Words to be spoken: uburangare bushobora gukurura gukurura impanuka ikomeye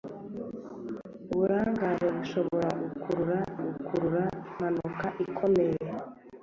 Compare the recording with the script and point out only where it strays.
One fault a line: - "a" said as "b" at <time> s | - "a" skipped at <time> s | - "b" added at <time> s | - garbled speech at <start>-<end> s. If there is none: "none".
none